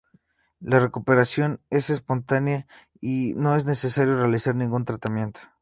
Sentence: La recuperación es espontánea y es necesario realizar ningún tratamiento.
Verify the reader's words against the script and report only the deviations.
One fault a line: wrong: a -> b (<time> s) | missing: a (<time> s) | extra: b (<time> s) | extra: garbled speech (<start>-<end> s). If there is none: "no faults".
extra: no (3.4 s)